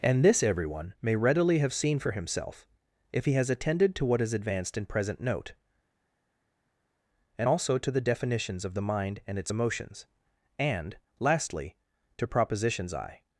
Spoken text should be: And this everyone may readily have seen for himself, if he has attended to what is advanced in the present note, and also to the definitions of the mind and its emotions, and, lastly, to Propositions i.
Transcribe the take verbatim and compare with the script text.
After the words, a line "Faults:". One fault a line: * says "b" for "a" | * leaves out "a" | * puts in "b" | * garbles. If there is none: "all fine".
And this everyone may readily have seen for himself, if he has attended to what is advanced in present note, and also to the definitions of the mind and its emotions, and, lastly, to Propositions i.
Faults:
* leaves out "the"